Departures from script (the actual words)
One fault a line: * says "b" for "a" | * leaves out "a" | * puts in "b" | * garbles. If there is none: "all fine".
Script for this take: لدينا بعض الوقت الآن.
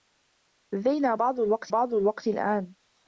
* puts in "بعض الوقت"